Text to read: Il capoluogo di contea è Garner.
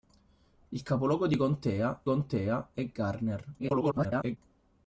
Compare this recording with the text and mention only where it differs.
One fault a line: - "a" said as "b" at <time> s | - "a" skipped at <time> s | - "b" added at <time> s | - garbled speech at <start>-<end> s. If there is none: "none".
- "contea" added at 2.0 s
- garbled speech at 3.6-4.4 s